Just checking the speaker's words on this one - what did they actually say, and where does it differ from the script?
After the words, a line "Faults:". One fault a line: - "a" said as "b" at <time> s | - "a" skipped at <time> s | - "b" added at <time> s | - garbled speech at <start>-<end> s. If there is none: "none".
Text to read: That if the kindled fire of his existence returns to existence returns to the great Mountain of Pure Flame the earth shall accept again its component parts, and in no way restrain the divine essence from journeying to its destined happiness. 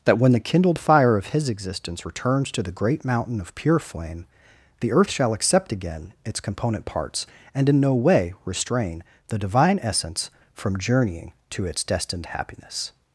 That when the kindled fire of his existence returns to the great Mountain of Pure Flame the earth shall accept again its component parts, and in no way restrain the divine essence from journeying to its destined happiness.
Faults:
- "if" said as "when" at 0.2 s
- "existence returns to" skipped at 2.6 s